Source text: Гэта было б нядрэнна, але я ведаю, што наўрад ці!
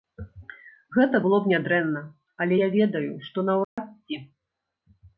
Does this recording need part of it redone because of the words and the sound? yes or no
yes